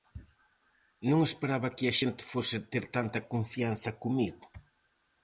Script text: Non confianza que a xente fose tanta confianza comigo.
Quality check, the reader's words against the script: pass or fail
fail